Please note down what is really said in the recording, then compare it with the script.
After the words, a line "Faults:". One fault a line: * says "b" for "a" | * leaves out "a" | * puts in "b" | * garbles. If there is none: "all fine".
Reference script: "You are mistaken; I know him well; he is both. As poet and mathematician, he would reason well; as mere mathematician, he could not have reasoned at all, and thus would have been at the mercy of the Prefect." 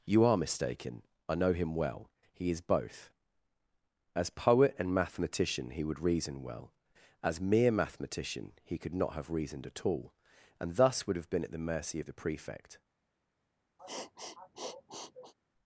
"You are mistaken; I know him well; he is both. As poet and mathematician, he would reason well; as mere mathematician, he could not have reasoned at all, and thus would have been at the mercy of the Prefect."
Faults:
all fine